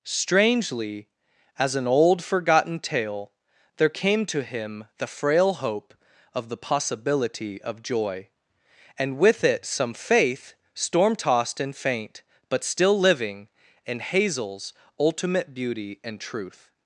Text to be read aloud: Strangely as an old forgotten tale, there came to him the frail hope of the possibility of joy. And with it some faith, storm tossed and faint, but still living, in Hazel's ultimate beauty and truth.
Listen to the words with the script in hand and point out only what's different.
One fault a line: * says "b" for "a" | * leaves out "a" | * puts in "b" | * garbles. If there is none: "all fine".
all fine